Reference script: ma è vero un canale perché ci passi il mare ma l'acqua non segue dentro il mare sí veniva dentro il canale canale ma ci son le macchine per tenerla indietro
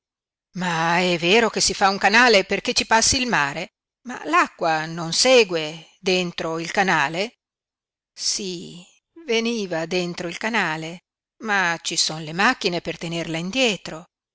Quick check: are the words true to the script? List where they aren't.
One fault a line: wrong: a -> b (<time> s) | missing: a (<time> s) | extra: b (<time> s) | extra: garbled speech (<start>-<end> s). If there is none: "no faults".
extra: che si fa (1.5 s)
wrong: mare -> canale (6.7 s)
missing: canale (11.0 s)